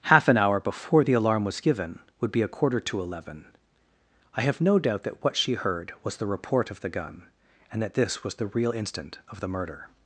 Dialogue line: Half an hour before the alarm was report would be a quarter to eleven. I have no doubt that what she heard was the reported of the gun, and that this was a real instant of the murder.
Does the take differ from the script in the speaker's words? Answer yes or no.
yes